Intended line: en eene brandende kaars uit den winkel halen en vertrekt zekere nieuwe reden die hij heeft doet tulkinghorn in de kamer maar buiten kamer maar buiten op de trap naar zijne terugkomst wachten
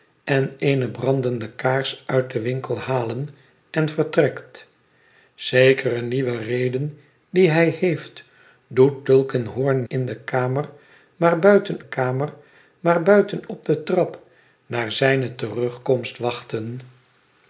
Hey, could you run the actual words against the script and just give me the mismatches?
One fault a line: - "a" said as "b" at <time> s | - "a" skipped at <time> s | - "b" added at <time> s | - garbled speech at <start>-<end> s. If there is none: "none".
none